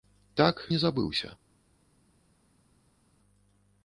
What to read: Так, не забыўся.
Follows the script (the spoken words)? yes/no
yes